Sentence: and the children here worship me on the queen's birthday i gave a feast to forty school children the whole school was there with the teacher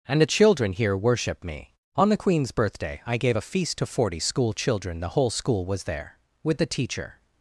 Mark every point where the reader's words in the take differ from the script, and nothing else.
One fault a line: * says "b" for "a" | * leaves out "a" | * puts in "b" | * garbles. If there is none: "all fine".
all fine